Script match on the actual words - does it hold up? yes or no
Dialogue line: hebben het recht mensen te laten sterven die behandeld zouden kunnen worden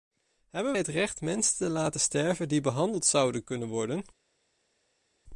yes